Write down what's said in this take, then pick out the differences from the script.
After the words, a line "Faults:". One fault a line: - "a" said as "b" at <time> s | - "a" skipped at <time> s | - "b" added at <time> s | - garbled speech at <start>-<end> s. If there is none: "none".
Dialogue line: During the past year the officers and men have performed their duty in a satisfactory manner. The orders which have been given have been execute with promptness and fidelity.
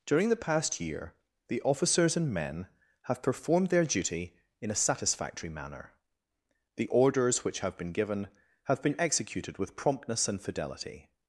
During the past year the officers and men have performed their duty in a satisfactory manner. The orders which have been given have been executed with promptness and fidelity.
Faults:
- "execute" said as "executed" at 9.0 s